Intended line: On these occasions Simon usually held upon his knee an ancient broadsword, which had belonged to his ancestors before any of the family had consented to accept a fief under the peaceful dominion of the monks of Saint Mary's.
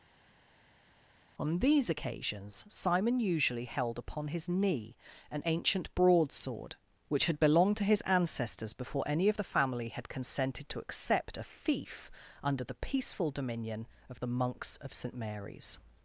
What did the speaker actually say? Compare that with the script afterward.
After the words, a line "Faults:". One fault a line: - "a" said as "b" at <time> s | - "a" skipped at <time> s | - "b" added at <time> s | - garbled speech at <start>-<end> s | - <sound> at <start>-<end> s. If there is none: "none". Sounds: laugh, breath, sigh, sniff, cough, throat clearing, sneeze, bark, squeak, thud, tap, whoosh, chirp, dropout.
On these occasions Simon usually held upon his knee an ancient broadsword, which had belonged to his ancestors before any of the family had consented to accept a fief under the peaceful dominion of the monks of Saint Mary's.
Faults:
none